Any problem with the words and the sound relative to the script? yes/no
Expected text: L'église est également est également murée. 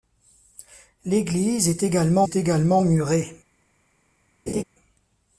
yes